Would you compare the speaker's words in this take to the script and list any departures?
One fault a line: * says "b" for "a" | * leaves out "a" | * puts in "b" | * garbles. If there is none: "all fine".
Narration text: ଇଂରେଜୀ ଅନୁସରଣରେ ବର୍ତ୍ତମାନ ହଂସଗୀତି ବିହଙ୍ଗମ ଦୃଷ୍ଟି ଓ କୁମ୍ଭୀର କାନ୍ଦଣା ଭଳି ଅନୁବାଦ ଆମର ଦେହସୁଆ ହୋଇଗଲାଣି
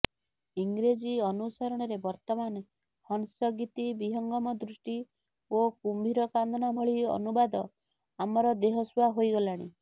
all fine